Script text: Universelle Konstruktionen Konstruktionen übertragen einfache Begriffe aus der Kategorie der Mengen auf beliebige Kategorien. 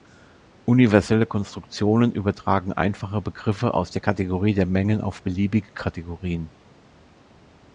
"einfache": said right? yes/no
yes